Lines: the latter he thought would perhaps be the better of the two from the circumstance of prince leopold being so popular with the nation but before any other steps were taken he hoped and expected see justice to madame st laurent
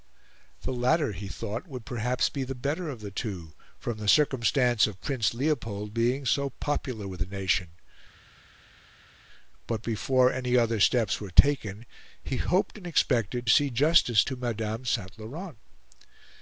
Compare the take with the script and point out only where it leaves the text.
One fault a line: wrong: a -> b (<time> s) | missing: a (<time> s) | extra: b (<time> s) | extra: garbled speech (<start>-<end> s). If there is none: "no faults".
no faults